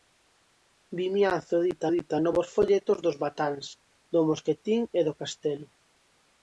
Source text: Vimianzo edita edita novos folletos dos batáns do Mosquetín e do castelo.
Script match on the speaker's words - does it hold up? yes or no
yes